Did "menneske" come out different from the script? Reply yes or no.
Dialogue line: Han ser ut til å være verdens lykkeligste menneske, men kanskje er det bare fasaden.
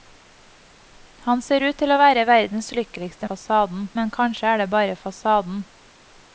yes